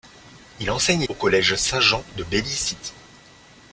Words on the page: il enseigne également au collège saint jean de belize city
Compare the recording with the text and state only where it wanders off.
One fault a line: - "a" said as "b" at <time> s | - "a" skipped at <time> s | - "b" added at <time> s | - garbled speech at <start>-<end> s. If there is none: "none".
- "également" skipped at 1.0 s